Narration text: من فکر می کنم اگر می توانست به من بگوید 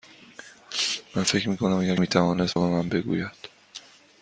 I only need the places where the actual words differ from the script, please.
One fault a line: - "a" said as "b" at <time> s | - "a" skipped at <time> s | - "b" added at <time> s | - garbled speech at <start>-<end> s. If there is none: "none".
none